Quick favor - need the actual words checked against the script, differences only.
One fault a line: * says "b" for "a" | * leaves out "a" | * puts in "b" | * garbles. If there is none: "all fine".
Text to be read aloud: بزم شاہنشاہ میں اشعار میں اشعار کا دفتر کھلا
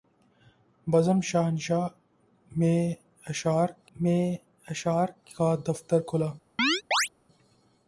all fine